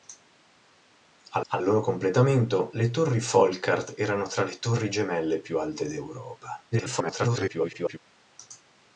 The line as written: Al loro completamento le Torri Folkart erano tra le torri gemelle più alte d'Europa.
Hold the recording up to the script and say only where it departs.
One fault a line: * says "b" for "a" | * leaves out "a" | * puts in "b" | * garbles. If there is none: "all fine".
* puts in "al"
* garbles